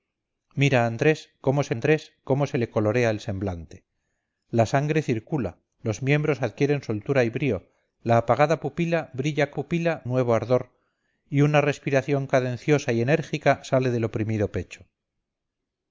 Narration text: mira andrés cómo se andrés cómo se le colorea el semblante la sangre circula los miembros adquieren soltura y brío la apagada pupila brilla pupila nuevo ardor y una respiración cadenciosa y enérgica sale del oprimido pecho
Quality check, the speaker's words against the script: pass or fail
pass